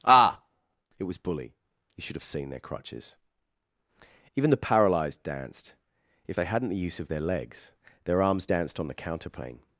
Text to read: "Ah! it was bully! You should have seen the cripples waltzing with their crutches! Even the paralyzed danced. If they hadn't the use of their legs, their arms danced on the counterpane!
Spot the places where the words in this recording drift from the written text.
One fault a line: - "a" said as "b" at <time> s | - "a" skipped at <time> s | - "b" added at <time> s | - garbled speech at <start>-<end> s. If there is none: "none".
- "the cripples waltzing with" skipped at 2.5 s